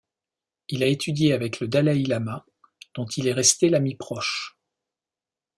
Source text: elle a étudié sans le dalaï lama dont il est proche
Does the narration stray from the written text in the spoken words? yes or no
yes